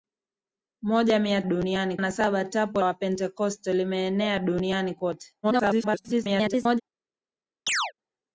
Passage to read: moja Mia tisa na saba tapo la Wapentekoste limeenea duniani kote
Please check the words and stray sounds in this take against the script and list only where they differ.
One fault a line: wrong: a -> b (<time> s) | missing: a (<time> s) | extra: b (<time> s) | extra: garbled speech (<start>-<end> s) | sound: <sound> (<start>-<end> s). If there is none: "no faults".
wrong: tisa -> duniani (1.4 s)
missing: la (2.8 s)
extra: garbled speech (5.4-6.8 s)
sound: chirp (7.7-7.9 s)